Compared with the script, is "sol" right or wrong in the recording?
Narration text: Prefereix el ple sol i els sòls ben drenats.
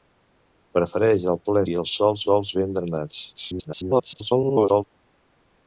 wrong